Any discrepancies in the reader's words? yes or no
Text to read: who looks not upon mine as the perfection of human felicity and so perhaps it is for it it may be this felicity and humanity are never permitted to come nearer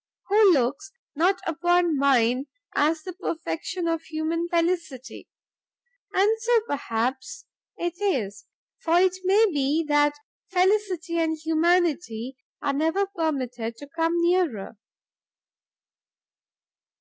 yes